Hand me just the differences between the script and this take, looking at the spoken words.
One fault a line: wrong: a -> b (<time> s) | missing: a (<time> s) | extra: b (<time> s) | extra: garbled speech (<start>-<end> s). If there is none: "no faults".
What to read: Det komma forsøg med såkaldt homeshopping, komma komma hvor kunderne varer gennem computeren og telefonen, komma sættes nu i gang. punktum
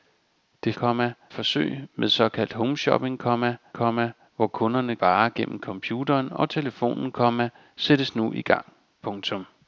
no faults